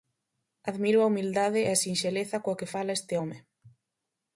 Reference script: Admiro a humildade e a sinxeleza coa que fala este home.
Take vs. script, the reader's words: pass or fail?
pass